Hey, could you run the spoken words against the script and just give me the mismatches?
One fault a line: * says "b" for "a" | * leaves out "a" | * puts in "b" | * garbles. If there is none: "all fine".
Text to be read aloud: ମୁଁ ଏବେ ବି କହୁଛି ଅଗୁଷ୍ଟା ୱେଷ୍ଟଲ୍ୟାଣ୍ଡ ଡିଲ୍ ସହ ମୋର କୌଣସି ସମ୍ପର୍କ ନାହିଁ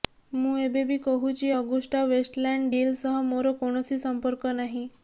all fine